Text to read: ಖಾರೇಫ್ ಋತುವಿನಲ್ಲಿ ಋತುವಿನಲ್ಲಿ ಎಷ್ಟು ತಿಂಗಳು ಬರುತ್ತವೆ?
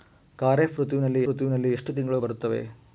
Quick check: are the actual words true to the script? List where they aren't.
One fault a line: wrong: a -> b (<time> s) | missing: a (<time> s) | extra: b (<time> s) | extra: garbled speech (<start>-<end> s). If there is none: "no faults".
no faults